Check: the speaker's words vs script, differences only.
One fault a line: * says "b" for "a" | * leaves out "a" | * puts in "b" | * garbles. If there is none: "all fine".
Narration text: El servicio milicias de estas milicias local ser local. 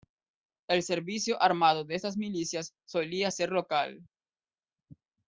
* says "armado" for "milicias"
* says "solía" for "local"